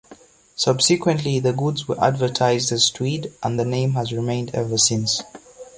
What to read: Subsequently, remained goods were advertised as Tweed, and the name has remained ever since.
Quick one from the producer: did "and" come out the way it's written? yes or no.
yes